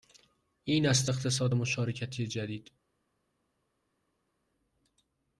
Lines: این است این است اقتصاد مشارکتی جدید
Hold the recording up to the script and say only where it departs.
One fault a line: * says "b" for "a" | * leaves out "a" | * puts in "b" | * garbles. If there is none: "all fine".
* leaves out "این است"